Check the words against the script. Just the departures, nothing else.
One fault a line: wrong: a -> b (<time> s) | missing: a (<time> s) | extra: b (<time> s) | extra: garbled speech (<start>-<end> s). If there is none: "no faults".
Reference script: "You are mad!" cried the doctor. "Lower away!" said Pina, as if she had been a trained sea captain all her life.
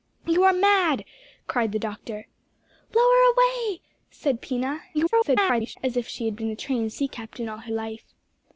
extra: garbled speech (4.9-5.8 s)